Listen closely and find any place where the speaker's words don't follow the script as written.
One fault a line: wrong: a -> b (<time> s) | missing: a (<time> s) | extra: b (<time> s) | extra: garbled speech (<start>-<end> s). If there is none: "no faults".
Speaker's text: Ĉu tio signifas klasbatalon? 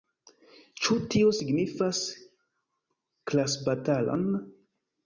no faults